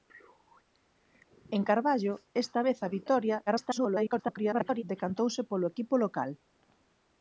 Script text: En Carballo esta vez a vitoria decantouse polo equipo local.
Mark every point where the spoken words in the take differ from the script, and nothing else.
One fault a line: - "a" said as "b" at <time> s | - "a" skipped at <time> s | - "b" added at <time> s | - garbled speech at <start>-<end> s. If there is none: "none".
- garbled speech at 3.5-4.8 s